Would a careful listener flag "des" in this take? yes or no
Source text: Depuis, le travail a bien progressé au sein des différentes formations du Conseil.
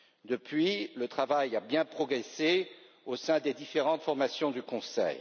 no